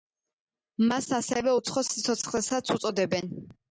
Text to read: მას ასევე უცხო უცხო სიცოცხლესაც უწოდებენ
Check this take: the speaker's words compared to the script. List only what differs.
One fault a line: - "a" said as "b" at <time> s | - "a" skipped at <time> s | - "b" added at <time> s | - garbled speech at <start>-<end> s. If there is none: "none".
- "უცხო" skipped at 1.8 s